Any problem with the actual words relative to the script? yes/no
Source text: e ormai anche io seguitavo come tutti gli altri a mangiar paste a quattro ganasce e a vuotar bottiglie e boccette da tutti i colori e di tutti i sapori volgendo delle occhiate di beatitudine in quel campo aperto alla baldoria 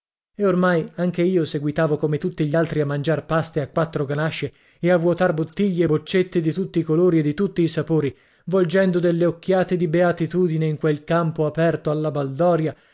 yes